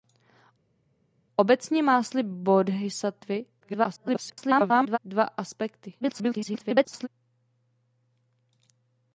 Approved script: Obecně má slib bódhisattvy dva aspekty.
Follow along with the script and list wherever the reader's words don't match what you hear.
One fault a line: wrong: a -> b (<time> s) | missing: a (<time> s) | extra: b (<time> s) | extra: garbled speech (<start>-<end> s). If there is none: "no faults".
extra: garbled speech (3.6-5.0 s)
extra: garbled speech (6.0-7.1 s)